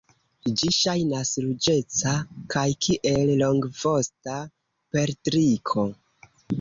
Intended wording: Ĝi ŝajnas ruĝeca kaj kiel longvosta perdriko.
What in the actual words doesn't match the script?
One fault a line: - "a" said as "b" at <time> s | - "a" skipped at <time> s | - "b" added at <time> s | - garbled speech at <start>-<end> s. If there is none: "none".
none